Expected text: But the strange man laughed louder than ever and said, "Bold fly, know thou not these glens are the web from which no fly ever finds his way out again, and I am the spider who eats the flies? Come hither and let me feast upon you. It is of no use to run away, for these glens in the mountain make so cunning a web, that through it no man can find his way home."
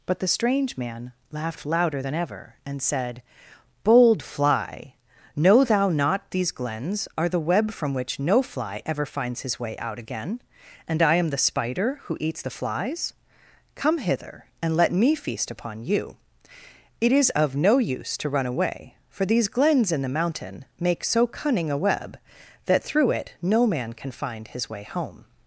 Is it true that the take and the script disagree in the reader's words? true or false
false